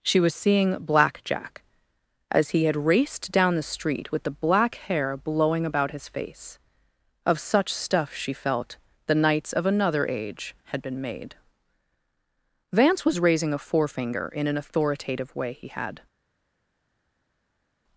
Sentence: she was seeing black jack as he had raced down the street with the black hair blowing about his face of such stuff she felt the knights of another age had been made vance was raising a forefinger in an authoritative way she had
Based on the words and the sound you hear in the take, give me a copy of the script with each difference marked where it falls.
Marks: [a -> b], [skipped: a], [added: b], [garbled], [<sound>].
she was seeing black jack as he had raced down the street with the black hair blowing about his face of such stuff she felt the knights of another age had been made vance was raising a forefinger in an authoritative way [she -> he] had